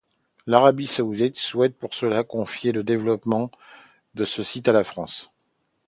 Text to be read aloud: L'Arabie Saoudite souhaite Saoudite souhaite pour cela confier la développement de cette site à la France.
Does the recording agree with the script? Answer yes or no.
no